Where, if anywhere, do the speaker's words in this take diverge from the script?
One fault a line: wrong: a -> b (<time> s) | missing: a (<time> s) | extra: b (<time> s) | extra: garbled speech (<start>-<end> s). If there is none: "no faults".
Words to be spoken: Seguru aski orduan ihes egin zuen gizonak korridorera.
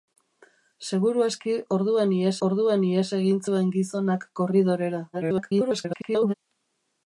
extra: orduan ihes (2.5 s)
extra: garbled speech (5.1-6.3 s)